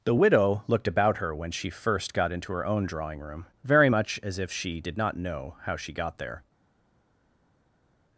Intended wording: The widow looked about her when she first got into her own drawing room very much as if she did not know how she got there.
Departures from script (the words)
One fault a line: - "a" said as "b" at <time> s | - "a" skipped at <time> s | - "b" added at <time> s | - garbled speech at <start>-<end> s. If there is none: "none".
none